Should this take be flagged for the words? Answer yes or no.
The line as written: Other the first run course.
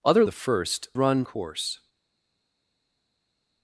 no